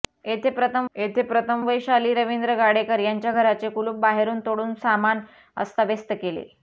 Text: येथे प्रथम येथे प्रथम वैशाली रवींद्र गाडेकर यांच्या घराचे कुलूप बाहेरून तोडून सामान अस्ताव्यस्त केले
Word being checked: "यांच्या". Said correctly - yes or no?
yes